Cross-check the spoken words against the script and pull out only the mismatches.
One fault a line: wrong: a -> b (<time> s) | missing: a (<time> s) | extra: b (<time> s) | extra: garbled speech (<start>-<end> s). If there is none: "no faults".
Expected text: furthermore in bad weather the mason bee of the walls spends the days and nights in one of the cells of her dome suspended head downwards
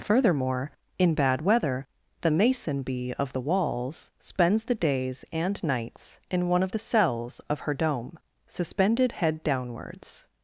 no faults